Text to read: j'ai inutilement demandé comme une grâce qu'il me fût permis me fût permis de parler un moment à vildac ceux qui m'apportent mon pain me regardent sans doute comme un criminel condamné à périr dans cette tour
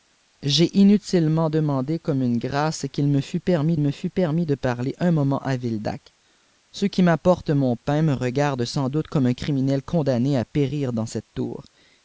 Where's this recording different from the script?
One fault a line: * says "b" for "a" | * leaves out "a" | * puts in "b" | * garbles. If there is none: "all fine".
all fine